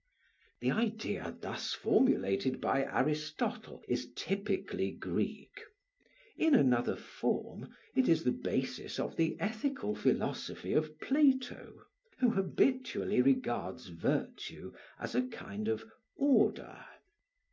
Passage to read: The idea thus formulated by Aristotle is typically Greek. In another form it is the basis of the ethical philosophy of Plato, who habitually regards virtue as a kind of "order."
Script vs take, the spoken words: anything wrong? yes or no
no